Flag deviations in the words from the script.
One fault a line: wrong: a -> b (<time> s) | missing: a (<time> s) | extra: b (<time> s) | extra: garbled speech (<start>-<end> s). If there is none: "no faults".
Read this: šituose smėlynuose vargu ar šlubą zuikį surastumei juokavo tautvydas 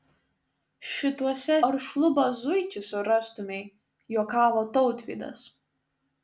missing: smėlynuose vargu (1.6 s)